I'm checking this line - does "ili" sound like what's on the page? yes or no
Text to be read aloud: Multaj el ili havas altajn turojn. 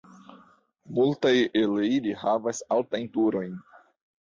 yes